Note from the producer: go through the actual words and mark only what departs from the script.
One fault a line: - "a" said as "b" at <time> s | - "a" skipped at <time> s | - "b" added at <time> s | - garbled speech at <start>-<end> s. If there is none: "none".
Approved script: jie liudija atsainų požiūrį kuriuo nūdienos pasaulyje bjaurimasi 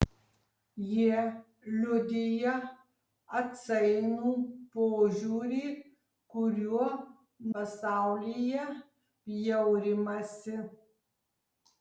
- "nūdienos" skipped at 6.9 s